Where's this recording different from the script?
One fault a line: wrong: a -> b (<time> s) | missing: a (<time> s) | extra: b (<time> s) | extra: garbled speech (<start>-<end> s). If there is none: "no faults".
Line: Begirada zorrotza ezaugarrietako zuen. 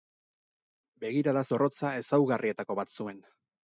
extra: bat (2.8 s)